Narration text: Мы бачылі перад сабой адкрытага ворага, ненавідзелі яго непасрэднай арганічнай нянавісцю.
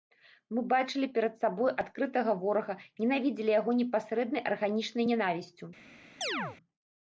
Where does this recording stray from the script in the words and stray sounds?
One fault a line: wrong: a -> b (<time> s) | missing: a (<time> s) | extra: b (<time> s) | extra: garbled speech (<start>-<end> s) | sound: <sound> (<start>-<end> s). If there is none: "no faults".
sound: chirp (6.2-6.6 s)